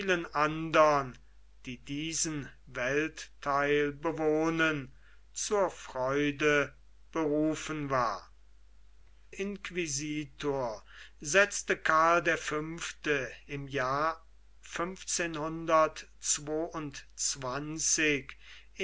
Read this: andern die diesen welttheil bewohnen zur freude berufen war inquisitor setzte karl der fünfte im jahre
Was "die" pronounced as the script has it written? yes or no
yes